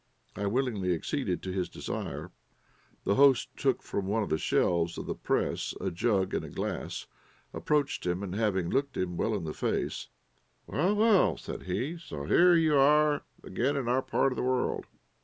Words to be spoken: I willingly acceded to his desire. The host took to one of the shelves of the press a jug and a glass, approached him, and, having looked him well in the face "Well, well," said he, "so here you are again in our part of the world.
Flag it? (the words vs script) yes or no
yes